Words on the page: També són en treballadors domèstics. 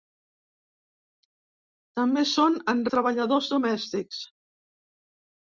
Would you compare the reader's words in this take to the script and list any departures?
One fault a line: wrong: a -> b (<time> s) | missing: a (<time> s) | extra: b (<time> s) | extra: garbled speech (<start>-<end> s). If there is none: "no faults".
no faults